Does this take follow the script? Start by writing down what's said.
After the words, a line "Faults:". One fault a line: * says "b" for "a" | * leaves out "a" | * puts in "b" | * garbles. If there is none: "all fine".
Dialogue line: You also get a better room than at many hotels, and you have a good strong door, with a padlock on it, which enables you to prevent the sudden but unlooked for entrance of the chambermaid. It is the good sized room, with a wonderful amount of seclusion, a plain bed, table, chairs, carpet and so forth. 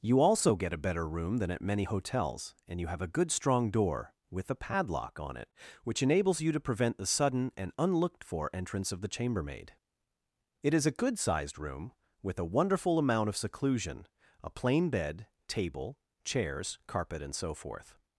You also get a better room than at many hotels, and you have a good strong door, with a padlock on it, which enables you to prevent the sudden and unlooked for entrance of the chambermaid. It is a good sized room, with a wonderful amount of seclusion, a plain bed, table, chairs, carpet and so forth.
Faults:
* says "and" for "but"
* says "a" for "the"